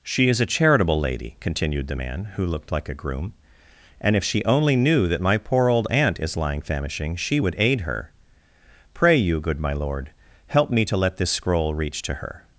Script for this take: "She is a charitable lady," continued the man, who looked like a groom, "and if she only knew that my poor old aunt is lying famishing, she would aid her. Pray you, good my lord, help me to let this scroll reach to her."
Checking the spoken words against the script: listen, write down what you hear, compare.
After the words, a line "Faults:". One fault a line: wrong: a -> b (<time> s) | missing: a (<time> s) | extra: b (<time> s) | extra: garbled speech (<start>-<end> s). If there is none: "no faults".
"She is a charitable lady," continued the man, who looked like a groom, "and if she only knew that my poor old aunt is lying famishing, she would aid her. Pray you, good my lord, help me to let this scroll reach to her."
Faults:
no faults